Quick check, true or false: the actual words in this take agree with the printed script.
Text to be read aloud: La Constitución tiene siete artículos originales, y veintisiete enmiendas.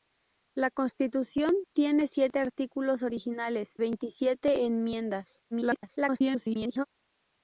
false